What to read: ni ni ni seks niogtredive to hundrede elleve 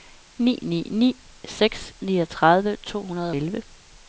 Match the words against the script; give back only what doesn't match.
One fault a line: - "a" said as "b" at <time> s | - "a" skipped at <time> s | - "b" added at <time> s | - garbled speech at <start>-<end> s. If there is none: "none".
none